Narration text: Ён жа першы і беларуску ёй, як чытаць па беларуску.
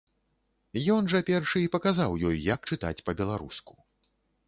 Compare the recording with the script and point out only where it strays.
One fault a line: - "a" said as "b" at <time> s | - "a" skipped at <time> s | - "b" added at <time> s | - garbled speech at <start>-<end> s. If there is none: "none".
- "беларуску" said as "паказаў" at 1.8 s